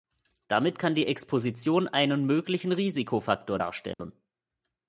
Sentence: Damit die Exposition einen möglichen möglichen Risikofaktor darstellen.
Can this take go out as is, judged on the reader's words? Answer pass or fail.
fail